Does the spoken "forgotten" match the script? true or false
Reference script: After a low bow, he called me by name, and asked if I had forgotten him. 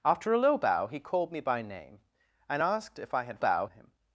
false